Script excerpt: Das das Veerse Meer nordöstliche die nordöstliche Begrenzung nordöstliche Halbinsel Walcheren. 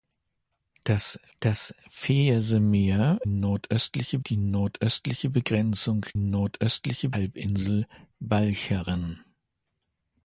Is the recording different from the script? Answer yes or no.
no